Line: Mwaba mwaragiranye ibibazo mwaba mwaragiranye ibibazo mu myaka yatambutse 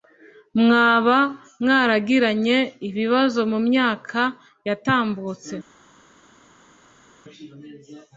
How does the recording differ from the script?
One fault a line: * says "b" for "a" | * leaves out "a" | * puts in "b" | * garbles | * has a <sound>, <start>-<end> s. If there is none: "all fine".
* leaves out "mwaba mwaragiranye ibibazo"